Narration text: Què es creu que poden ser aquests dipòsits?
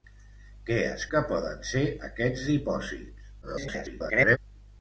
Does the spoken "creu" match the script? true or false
false